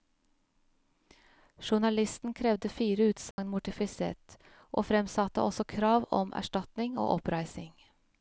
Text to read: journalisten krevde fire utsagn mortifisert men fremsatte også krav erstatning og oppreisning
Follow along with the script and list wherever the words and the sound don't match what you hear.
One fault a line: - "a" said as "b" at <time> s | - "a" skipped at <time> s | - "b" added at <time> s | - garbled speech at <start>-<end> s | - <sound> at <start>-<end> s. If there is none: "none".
- dropout at 3.3-3.4 s
- "men" said as "og" at 4.7 s
- "om" added at 6.2 s